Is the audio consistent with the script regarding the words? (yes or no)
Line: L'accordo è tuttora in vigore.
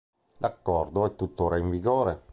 yes